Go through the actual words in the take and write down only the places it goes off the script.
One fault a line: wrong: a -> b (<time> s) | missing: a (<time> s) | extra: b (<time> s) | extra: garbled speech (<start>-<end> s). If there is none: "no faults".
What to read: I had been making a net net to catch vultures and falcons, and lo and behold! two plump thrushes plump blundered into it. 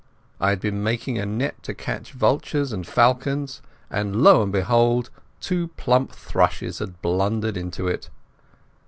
missing: net (1.6 s)
wrong: plump -> had (6.8 s)